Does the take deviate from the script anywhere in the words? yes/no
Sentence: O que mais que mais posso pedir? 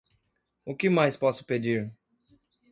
yes